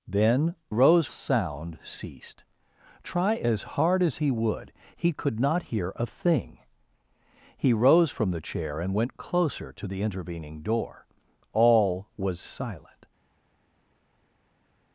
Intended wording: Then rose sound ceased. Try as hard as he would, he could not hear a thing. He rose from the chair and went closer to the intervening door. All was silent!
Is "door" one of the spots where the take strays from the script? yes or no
no